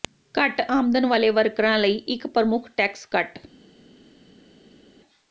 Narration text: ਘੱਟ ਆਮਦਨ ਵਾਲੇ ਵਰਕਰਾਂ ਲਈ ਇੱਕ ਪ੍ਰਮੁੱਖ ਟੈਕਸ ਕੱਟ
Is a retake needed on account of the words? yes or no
no